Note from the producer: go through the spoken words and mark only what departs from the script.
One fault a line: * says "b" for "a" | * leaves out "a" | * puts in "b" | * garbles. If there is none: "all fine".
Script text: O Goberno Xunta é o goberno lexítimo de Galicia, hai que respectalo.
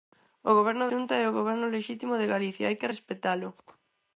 all fine